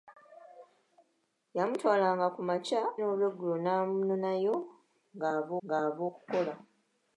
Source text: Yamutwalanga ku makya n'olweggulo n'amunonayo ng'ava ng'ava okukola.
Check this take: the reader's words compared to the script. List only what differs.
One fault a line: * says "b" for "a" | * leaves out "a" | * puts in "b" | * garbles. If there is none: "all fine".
all fine